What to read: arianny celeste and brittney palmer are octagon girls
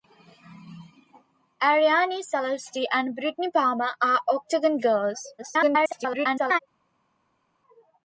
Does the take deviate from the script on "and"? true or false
false